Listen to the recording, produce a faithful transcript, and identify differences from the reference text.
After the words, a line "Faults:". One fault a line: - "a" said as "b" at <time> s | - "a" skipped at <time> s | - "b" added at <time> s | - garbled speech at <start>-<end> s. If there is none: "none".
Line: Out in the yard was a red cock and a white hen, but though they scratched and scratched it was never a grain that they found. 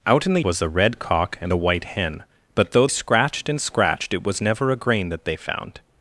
Out in the was a red cock and a white hen, but though scratched and scratched it was never a grain that they found.
Faults:
- "yard" skipped at 0.4 s
- "they" skipped at 2.9 s